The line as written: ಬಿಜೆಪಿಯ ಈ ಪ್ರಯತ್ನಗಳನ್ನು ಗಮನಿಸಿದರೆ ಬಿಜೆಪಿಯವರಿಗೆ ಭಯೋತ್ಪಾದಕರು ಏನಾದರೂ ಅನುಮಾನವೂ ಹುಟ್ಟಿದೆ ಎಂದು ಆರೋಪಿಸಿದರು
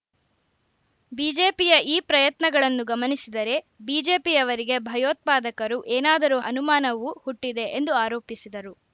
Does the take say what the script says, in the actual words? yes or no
yes